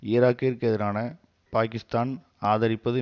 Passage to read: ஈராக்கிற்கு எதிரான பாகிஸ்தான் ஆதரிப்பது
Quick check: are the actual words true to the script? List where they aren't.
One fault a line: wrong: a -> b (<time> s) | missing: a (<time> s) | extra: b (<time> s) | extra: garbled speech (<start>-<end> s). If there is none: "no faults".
no faults